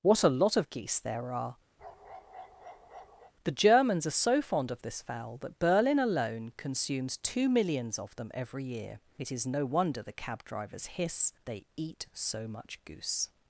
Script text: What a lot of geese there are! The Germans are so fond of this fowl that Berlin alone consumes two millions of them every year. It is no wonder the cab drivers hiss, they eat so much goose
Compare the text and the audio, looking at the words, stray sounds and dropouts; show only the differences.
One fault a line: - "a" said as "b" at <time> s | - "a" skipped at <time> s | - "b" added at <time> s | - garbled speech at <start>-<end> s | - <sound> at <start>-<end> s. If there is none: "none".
- bark at 1.8-3.3 s